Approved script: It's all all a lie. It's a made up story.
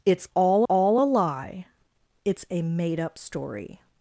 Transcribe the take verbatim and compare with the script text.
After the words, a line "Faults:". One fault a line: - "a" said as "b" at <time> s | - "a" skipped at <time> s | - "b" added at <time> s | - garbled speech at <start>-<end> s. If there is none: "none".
It's all all a lie. It's a made up story.
Faults:
none